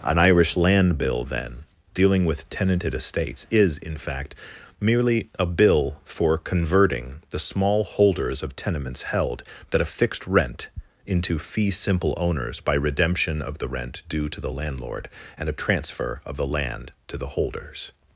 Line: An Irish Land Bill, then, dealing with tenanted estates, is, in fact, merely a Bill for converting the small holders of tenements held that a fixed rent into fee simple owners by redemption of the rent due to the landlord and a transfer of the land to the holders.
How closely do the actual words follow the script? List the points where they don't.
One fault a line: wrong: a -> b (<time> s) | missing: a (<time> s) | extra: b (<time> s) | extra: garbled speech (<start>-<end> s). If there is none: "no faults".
no faults